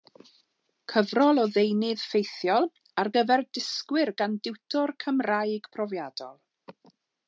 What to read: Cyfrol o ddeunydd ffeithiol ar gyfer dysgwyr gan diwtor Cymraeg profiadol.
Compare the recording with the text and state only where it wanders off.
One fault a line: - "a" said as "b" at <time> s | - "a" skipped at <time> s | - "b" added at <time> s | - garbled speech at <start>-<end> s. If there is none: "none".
none